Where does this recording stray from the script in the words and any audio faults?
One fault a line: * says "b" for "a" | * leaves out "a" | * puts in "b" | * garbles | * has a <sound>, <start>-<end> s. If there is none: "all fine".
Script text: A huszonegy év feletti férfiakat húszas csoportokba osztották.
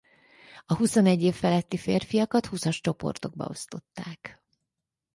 all fine